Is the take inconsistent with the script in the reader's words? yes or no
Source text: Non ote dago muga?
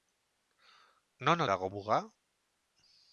yes